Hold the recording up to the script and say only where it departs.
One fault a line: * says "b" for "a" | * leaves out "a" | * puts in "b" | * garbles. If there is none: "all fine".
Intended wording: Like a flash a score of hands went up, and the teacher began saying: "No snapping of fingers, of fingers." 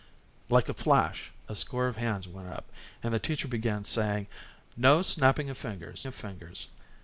all fine